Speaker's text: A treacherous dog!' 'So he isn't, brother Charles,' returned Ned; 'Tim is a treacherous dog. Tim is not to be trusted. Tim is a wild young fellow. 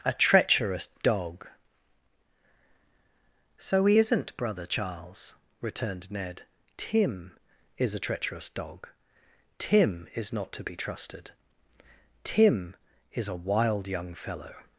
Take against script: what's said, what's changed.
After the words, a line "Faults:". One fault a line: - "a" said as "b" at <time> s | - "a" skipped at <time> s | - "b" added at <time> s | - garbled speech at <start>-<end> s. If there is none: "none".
A treacherous dog!' 'So he isn't, brother Charles,' returned Ned; 'Tim is a treacherous dog. Tim is not to be trusted. Tim is a wild young fellow.
Faults:
none